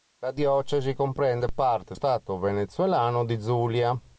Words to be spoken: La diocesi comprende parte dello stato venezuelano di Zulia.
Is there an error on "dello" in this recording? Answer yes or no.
yes